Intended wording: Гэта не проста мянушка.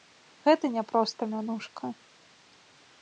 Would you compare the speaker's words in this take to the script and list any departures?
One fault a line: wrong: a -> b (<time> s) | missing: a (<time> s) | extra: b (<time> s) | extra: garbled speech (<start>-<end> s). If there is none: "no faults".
no faults